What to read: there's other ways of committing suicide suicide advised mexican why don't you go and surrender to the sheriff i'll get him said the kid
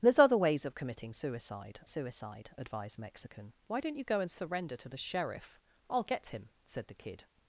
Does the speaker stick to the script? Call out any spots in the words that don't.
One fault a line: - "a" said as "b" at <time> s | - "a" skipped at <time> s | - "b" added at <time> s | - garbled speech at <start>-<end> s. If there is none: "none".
none